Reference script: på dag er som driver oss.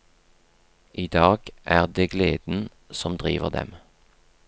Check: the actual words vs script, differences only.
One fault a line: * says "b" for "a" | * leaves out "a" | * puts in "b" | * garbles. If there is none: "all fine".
* says "I" for "på"
* puts in "det gleden"
* says "dem" for "oss"